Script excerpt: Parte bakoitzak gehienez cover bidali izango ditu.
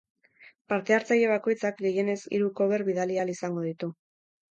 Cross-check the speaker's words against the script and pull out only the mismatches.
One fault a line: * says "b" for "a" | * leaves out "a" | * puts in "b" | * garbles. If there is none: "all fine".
* puts in "hartzaile"
* puts in "hiru"
* puts in "ahal"